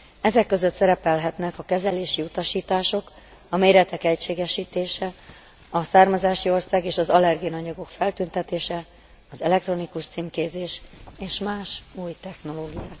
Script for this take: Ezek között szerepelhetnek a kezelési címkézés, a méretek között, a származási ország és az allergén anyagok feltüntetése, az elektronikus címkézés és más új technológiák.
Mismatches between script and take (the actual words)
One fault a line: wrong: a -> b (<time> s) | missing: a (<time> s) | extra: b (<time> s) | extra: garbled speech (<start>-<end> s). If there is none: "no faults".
wrong: címkézés -> utasítások (2.2 s)
wrong: között -> egységesítése (4.0 s)